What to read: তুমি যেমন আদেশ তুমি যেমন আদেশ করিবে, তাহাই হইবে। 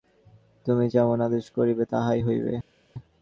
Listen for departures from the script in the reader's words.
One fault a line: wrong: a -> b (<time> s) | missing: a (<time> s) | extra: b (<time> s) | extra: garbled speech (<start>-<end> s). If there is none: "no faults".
missing: তুমি যেমন আদেশ (1.5 s)